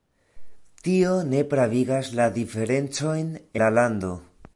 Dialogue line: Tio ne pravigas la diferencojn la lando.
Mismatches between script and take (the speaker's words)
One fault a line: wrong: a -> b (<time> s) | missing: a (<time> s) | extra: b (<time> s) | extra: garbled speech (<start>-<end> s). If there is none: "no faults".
no faults